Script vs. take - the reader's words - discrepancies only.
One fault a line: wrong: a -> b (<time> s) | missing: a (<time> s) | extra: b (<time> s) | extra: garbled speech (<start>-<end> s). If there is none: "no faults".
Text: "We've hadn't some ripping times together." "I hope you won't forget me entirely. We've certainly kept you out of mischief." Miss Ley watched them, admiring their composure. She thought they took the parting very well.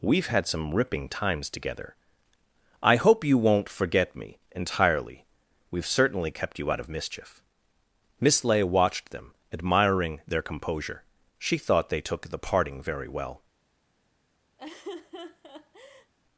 wrong: hadn't -> had (0.3 s)